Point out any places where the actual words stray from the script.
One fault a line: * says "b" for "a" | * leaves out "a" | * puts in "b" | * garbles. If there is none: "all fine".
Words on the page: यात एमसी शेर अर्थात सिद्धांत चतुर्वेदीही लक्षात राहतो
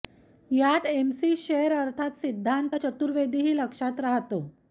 all fine